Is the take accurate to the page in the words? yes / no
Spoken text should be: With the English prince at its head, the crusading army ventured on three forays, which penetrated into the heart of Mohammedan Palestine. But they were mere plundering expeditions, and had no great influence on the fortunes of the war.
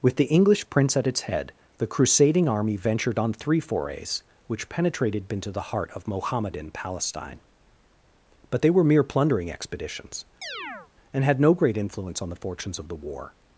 yes